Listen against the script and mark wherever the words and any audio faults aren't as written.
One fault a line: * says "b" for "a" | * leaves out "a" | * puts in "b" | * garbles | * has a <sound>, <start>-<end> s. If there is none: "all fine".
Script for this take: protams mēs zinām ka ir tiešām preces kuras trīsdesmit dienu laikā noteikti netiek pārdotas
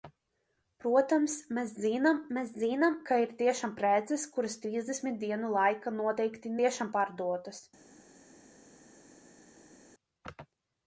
* puts in "mēs zinām"
* says "tiešām" for "netiek"